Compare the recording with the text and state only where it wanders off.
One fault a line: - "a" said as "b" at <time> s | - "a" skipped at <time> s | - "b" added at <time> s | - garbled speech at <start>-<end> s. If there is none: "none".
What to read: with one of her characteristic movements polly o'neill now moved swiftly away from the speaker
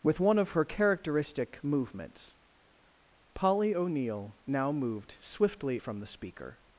- "away" skipped at 5.8 s